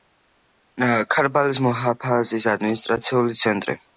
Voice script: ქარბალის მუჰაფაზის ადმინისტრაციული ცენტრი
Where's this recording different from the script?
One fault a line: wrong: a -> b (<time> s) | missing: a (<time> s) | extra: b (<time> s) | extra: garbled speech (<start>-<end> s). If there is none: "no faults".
no faults